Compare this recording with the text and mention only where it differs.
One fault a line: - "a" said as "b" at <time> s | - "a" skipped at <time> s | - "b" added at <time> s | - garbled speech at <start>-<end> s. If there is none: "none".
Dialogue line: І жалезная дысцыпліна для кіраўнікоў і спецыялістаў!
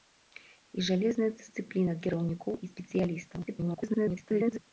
- "для" skipped at 1.9 s
- garbled speech at 3.5-4.6 s